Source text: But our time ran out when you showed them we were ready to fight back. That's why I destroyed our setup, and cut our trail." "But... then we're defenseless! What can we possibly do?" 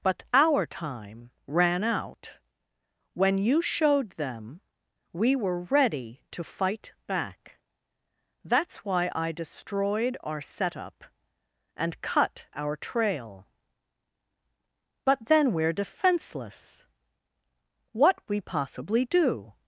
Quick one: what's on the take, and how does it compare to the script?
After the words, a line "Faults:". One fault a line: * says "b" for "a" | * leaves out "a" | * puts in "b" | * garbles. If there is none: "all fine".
But our time ran out when you showed them we were ready to fight back. That's why I destroyed our setup, and cut our trail." "But... then we're defenseless! What we possibly do?"
Faults:
* leaves out "can"